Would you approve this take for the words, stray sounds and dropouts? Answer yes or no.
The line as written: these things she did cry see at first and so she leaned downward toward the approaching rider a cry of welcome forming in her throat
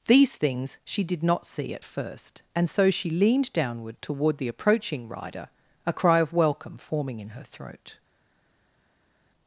no